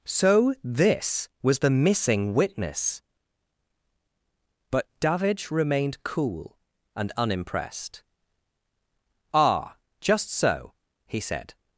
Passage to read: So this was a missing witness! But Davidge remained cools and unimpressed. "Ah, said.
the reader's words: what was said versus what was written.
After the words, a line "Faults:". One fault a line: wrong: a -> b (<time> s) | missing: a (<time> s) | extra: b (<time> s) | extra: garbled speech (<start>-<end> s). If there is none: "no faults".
So this was the missing witness! But Davidge remained cool and unimpressed. "Ah, just so!" he said.
Faults:
wrong: a -> the (1.6 s)
wrong: cools -> cool (6.0 s)
extra: just so he (10.0 s)